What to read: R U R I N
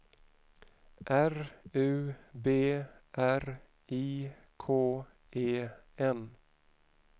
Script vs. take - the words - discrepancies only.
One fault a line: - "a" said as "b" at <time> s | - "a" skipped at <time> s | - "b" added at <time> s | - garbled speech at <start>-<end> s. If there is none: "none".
- "B" added at 2.3 s
- "K E" added at 4.6 s